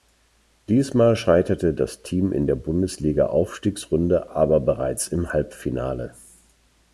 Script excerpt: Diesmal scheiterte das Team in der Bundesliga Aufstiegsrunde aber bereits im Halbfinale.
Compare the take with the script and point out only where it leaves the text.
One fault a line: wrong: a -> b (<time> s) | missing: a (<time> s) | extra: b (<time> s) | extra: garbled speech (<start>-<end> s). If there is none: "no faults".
no faults